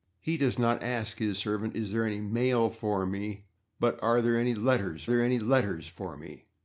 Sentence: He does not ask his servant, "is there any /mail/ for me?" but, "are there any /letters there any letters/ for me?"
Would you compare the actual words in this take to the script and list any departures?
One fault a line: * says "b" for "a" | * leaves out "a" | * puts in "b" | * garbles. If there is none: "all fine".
all fine